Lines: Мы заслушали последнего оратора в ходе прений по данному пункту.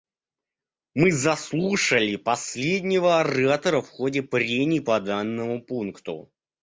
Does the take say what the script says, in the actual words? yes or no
yes